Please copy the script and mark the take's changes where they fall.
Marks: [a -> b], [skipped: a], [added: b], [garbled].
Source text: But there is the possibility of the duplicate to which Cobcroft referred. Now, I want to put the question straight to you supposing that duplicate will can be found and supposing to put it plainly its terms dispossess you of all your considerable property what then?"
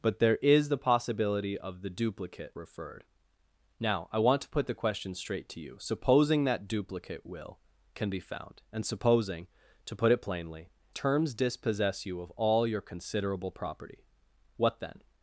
But there is the possibility of the duplicate [skipped: to which Cobcroft] referred. Now, I want to put the question straight to you supposing that duplicate will can be found and supposing to put it plainly [skipped: its] terms dispossess you of all your considerable property what then?"